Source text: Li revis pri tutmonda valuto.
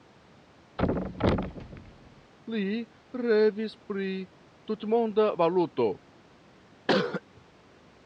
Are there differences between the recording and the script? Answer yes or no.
no